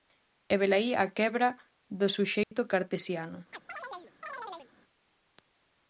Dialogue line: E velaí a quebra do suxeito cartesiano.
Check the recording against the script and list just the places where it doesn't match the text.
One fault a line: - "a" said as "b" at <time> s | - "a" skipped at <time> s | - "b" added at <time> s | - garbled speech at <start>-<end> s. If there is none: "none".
none